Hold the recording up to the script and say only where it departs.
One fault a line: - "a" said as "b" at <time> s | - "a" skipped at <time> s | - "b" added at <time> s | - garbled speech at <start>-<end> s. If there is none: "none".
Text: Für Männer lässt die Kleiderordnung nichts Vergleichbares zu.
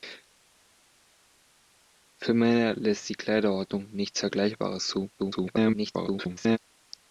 - garbled speech at 5.2-6.6 s